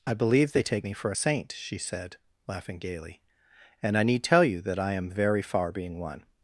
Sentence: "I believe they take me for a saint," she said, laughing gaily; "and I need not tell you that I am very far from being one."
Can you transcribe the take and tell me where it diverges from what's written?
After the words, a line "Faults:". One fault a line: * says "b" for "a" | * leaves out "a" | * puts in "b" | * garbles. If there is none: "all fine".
"I believe they take me for a saint," she said, laughing gaily; "and I need tell you that I am very far being one."
Faults:
* leaves out "not"
* leaves out "from"